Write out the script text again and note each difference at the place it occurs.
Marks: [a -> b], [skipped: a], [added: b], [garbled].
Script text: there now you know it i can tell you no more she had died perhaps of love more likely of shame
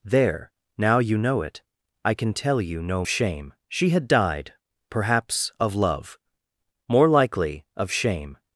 there now you know it i can tell you no [more -> shame] she had died perhaps of love more likely of shame